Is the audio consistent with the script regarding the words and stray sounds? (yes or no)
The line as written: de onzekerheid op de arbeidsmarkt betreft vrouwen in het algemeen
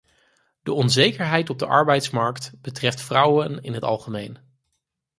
yes